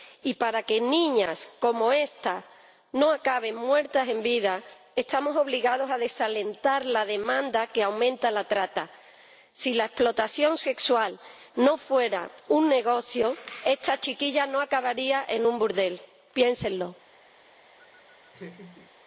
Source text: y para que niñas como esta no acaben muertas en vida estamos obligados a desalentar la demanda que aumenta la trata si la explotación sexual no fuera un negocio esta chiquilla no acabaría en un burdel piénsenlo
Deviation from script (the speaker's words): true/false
false